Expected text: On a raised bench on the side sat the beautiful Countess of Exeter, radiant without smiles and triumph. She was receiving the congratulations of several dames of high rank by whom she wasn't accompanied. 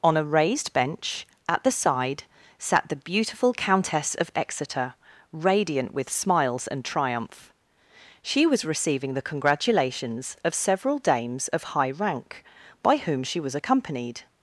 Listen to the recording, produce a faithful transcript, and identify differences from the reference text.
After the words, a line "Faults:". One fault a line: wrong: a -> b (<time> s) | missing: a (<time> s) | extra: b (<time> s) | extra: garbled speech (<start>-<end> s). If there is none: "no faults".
On a raised bench at the side sat the beautiful Countess of Exeter, radiant with smiles and triumph. She was receiving the congratulations of several dames of high rank by whom she was accompanied.
Faults:
wrong: on -> at (1.5 s)
wrong: without -> with (5.9 s)
wrong: wasn't -> was (13.4 s)